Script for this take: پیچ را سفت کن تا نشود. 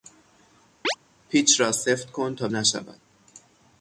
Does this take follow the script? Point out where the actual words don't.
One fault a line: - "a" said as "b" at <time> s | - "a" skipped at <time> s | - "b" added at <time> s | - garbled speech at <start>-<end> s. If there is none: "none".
none